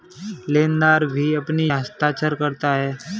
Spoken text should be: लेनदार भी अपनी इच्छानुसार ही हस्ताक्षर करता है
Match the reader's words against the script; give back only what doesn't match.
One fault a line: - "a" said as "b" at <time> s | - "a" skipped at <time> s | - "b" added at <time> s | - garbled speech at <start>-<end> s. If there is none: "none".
- "इच्छानुसार ही" skipped at 1.7 s